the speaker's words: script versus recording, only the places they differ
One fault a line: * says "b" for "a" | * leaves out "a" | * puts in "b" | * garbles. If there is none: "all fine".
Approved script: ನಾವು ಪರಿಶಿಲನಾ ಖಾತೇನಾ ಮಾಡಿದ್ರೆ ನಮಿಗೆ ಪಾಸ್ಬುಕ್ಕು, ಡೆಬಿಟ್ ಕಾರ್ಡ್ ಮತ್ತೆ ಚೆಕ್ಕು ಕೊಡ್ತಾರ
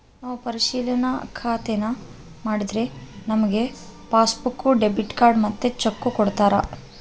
all fine